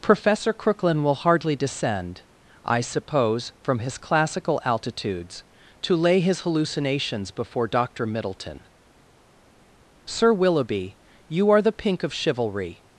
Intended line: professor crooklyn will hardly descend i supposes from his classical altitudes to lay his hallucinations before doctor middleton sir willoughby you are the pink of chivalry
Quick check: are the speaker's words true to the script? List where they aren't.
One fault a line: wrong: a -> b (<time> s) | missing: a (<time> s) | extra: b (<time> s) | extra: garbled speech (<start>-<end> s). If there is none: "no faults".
wrong: supposes -> suppose (2.8 s)